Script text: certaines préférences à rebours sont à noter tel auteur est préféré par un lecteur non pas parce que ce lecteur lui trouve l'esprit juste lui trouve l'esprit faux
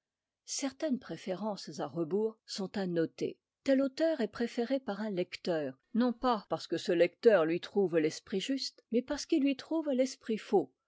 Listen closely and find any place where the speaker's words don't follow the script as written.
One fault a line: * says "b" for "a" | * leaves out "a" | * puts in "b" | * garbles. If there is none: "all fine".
* puts in "mais parce qu'il"